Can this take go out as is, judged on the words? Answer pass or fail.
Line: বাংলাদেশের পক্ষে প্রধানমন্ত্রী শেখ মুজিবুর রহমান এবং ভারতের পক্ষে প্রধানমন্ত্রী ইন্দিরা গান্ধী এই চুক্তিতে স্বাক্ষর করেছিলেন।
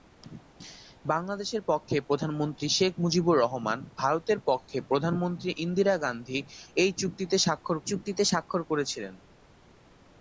fail